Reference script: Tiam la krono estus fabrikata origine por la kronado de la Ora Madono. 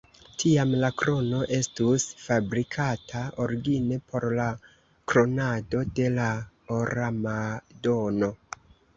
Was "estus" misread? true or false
false